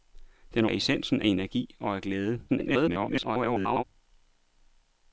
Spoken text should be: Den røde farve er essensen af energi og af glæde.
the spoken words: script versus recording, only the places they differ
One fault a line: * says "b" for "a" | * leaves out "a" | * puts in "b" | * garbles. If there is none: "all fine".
* leaves out "røde farve"
* garbles